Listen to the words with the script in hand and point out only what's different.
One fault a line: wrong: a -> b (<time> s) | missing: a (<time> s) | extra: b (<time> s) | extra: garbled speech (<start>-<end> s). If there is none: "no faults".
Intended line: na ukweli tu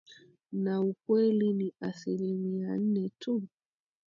extra: ni asilimia nne (1.5 s)